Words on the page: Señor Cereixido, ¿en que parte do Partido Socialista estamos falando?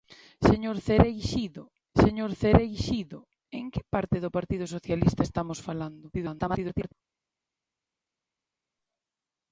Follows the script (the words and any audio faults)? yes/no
no